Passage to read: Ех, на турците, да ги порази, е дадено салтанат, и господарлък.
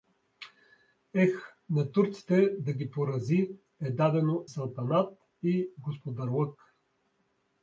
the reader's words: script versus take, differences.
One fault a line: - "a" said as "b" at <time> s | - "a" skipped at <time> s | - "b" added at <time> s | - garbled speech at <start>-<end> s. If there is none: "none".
none